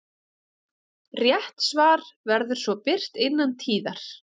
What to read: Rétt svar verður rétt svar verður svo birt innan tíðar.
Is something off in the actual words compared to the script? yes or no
yes